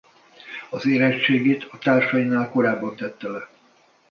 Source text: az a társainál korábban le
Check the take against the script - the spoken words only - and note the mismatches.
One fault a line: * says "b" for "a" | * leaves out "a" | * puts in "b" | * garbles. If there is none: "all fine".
* puts in "érettségit"
* puts in "tette"